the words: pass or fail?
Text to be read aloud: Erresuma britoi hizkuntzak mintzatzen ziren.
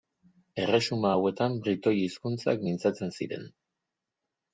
fail